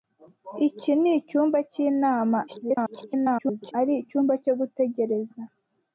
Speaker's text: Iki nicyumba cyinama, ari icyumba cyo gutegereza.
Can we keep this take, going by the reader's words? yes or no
no